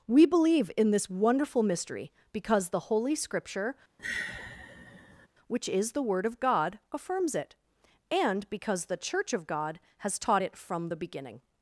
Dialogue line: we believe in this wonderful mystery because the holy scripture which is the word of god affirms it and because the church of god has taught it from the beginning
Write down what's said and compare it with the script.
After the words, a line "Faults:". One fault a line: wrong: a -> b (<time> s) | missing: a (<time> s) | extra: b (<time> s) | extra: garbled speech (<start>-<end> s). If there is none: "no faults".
we believe in this wonderful mystery because the holy scripture which is the word of god affirms it and because the church of god has taught it from the beginning
Faults:
no faults